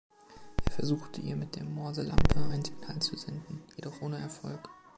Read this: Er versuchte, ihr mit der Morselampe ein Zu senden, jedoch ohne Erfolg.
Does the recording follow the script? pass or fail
fail